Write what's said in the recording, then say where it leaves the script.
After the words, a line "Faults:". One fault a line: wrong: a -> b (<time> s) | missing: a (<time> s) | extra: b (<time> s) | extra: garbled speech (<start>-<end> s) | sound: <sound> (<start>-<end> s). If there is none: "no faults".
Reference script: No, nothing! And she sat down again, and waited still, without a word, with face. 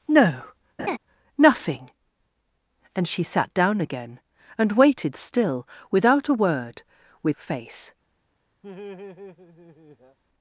No, nothing! And she sat down again, and waited still, without a word, with face.
Faults:
sound: laugh (0.8-1.0 s)
sound: laugh (8.6-10.2 s)